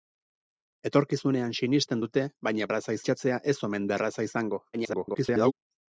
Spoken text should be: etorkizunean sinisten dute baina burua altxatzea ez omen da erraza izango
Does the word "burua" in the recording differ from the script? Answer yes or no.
yes